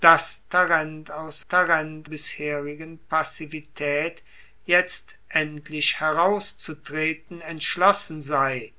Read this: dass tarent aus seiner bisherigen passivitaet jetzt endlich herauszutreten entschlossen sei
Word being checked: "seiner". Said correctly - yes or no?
no